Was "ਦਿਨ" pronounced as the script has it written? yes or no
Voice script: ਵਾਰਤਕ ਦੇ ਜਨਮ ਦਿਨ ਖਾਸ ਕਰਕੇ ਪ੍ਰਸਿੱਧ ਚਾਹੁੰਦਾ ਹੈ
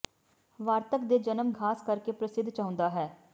no